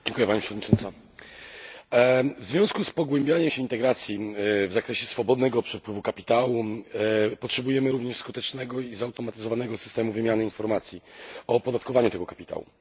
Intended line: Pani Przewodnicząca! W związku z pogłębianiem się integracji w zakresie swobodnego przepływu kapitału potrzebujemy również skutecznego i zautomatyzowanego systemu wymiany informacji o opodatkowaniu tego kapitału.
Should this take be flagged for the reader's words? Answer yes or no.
no